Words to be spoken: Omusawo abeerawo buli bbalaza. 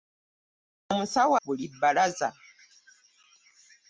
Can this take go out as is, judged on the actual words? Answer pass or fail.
fail